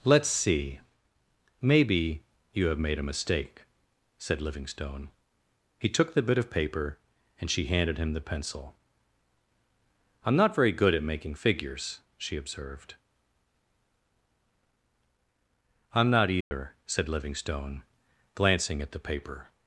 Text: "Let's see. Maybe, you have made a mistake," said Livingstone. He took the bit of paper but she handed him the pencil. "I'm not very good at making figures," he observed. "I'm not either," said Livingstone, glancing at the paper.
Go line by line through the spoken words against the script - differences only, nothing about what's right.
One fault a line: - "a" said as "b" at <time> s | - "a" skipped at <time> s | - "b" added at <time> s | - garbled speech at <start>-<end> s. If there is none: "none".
- "but" said as "and" at 7.4 s
- "he" said as "she" at 12.2 s